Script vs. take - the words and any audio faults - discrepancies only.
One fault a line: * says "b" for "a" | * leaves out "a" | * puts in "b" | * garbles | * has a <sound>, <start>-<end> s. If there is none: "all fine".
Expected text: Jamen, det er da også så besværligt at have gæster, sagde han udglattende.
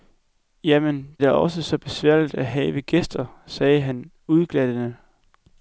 * leaves out "det"